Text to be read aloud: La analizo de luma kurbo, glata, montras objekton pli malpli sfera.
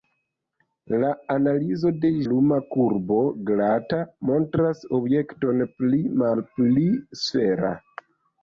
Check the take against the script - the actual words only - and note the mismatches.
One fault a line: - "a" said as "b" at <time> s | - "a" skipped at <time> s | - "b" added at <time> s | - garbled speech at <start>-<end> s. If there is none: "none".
none